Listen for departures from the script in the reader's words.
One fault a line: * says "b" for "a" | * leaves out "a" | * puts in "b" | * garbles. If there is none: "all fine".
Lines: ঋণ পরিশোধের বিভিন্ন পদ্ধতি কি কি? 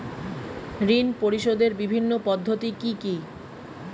all fine